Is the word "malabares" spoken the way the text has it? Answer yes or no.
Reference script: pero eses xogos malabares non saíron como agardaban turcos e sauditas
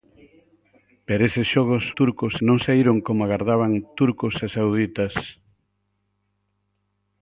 no